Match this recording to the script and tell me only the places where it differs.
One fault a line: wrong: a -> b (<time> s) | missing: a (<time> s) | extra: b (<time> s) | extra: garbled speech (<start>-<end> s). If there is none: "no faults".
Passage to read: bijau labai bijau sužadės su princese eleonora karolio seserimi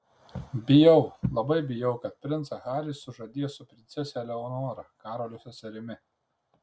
extra: kad princą harį (2.0 s)